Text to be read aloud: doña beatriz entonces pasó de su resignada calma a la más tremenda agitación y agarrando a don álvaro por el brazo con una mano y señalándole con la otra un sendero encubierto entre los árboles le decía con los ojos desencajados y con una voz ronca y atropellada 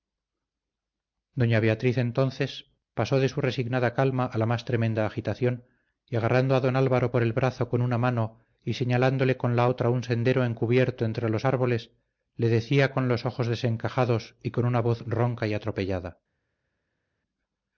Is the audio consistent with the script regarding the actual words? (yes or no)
yes